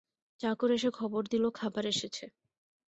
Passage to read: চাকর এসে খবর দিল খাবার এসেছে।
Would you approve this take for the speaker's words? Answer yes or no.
yes